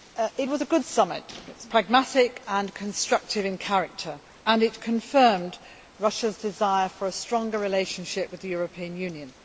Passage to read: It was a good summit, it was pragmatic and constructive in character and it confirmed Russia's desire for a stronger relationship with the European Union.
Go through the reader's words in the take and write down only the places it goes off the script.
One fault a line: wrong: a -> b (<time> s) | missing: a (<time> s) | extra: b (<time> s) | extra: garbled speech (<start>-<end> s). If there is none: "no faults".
no faults